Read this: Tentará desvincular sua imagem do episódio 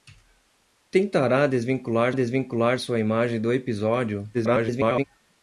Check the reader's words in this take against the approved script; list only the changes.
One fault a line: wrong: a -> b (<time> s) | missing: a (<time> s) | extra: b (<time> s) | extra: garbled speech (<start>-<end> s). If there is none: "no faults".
extra: desvincular (2.1 s)
extra: garbled speech (4.3-5.0 s)